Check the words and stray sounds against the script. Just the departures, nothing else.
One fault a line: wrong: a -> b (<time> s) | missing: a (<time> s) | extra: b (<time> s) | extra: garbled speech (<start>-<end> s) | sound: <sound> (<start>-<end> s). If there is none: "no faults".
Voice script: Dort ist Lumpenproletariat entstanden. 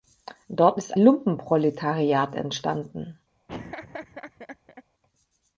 sound: laugh (3.5-4.8 s)